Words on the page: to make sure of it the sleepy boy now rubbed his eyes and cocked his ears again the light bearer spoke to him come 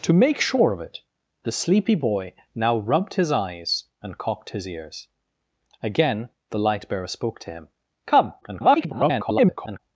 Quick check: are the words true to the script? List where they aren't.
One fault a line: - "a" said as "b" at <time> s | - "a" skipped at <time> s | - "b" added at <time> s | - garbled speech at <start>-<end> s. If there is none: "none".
- garbled speech at 8.4-9.8 s